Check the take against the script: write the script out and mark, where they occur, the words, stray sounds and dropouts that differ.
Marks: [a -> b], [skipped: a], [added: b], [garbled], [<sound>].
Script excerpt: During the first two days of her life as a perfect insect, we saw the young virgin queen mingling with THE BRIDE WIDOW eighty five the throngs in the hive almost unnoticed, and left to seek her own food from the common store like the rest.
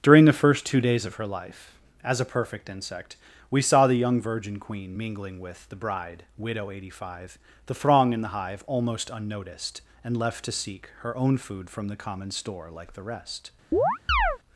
During the first two days of her life as a perfect insect, we saw the young virgin queen mingling with THE BRIDE WIDOW eighty five the [throngs -> throng] in the hive almost unnoticed, and left to seek her own food from the common store like the rest. [chirp]